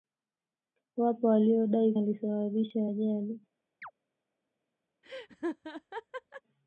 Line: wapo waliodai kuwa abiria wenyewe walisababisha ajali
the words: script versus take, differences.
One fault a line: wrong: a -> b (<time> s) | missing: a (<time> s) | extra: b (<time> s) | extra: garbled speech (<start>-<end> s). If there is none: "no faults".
missing: kuwa abiria wenyewe (1.9 s)